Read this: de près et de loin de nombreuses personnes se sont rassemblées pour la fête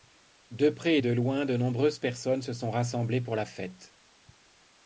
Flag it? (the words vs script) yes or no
no